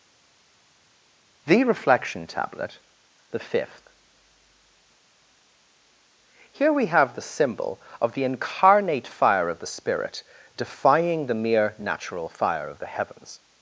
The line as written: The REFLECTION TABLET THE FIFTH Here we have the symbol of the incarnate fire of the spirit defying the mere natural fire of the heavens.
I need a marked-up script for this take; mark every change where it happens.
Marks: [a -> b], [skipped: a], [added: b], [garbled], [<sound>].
The REFLECTION TABLET THE FIFTH Here we have the symbol of the incarnate fire of the spirit defying the mere natural fire of the heavens.